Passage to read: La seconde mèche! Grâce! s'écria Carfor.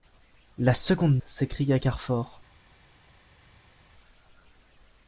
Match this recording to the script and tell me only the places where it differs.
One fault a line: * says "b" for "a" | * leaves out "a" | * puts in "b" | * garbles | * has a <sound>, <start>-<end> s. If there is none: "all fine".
* leaves out "mèche Grâce"